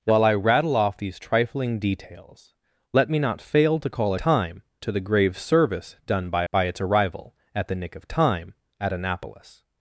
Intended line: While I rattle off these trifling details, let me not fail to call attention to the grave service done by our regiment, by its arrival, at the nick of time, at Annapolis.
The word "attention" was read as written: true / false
false